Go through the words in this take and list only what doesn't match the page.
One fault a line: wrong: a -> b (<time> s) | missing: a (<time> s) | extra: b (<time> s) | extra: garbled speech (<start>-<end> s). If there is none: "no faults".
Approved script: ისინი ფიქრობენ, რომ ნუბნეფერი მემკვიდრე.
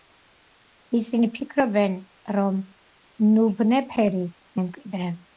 no faults